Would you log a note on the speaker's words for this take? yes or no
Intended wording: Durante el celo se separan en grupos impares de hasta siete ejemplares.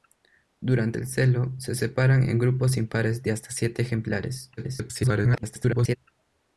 yes